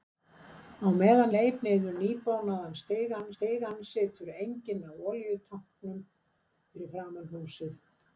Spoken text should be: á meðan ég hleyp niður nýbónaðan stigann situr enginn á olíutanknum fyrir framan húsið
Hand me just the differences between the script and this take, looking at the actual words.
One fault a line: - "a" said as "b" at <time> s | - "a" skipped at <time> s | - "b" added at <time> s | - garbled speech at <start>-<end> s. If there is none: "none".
- "ég" skipped at 1.3 s
- "stigann" added at 3.3 s